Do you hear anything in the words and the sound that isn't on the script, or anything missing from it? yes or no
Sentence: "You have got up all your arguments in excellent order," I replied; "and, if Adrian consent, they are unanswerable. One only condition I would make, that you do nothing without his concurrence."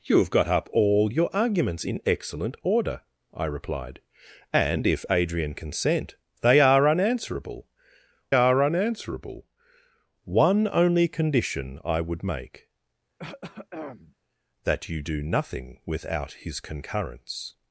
yes